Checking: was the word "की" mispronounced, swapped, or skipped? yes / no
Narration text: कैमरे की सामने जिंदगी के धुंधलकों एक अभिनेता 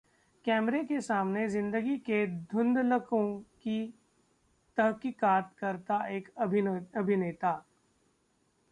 yes